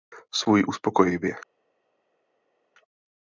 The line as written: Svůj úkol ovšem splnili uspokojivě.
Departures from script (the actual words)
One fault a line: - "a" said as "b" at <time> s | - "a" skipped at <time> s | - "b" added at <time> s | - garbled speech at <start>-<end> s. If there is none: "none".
- "úkol ovšem splnili" skipped at 0.6 s